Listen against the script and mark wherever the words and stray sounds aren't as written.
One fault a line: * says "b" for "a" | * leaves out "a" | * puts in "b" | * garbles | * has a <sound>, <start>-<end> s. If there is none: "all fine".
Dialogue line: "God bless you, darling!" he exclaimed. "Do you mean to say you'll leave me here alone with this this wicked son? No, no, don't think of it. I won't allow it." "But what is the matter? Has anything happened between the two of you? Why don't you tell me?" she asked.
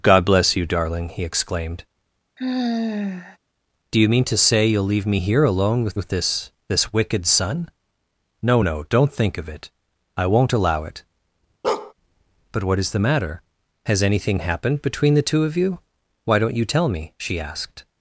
* has a sigh, 2.4-3.4 s
* puts in "with"
* has a bark, 11.6-11.9 s